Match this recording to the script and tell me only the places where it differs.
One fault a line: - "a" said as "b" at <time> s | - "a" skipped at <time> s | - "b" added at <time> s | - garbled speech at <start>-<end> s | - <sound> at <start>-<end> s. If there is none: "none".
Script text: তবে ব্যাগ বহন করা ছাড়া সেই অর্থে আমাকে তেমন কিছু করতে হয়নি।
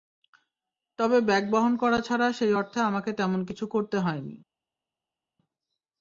none